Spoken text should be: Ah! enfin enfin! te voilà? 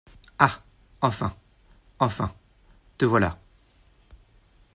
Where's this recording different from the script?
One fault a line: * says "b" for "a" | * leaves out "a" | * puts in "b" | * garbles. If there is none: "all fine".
all fine